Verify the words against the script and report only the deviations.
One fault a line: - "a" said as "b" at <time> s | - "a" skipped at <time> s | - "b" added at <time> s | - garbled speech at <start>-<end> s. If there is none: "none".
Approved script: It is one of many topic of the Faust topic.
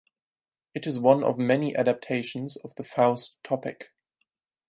- "topic" said as "adaptations" at 1.8 s